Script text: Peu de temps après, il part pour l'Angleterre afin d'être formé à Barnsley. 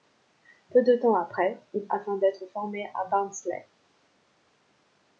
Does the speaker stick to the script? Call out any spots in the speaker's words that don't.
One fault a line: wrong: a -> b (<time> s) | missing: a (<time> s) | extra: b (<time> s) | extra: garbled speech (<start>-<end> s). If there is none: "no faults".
missing: part pour l'Angleterre (1.9 s)